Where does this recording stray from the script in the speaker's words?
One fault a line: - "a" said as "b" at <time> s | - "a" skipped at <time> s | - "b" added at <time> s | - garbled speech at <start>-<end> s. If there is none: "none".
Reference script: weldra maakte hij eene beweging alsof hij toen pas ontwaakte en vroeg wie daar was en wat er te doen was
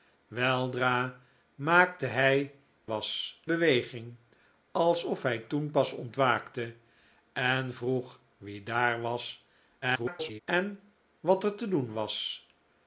- "eene" said as "was" at 2.9 s
- garbled speech at 9.8-10.4 s